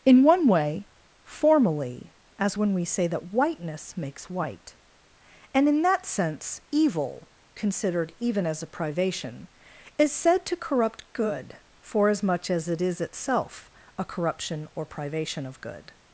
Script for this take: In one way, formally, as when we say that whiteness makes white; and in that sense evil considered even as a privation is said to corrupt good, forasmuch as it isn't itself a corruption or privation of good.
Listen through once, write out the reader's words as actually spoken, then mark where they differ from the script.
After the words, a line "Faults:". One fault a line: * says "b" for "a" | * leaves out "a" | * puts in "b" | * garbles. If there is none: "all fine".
In one way, formally, as when we say that whiteness makes white; and in that sense evil considered even as a privation is said to corrupt good, forasmuch as it is itself a corruption or privation of good.
Faults:
* says "is" for "isn't"